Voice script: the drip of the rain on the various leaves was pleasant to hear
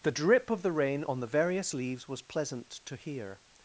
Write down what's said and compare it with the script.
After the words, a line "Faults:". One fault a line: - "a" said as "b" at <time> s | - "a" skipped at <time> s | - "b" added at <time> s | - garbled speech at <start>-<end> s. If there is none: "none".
the drip of the rain on the various leaves was pleasant to hear
Faults:
none